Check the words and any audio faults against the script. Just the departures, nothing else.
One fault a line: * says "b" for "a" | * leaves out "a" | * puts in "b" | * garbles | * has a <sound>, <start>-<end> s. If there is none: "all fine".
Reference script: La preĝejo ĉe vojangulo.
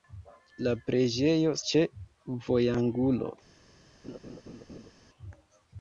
* has a laugh, 4.0-4.9 s